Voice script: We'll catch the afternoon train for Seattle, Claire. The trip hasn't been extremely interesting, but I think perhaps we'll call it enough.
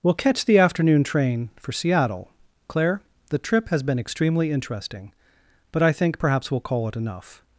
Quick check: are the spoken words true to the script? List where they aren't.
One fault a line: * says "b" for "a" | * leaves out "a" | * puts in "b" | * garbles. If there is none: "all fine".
* says "has" for "hasn't"